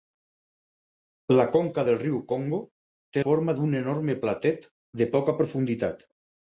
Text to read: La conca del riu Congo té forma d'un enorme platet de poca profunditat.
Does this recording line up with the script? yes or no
yes